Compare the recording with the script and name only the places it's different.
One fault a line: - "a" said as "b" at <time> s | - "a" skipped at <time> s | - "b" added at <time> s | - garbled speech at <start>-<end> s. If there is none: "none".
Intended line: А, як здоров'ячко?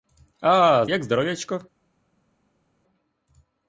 none